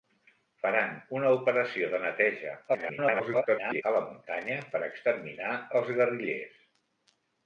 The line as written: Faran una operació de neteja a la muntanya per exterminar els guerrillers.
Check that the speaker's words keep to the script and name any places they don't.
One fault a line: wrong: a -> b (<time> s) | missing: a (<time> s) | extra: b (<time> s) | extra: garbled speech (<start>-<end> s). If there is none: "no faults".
extra: garbled speech (2.7-3.8 s)